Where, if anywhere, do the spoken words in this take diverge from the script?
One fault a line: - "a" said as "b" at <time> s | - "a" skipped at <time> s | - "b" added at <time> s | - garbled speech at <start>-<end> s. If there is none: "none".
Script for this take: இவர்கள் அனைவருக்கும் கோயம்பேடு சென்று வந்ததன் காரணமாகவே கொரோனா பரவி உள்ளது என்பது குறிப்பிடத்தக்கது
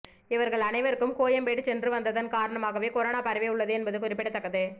none